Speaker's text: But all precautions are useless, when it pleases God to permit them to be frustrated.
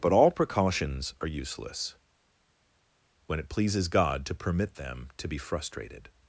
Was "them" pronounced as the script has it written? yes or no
yes